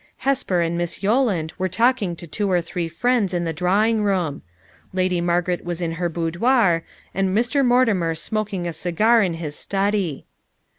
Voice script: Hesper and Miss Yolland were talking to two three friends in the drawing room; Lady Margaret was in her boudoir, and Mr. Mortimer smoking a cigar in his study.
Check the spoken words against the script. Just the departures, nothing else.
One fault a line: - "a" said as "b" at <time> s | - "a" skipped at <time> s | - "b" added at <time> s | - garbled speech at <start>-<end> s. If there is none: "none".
- "or" added at 2.5 s